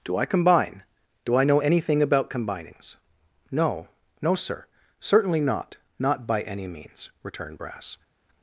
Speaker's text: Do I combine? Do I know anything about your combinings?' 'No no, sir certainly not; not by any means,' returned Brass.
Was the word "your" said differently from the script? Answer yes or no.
yes